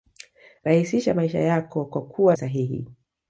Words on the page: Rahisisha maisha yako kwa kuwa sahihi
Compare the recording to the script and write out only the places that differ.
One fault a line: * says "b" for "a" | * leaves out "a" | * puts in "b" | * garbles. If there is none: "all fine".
all fine